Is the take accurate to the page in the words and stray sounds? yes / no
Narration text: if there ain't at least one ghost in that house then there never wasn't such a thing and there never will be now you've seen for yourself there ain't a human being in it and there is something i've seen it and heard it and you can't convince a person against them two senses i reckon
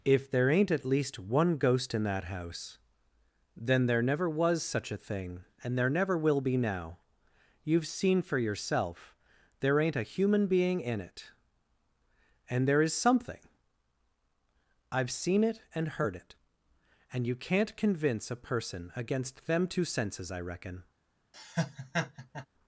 no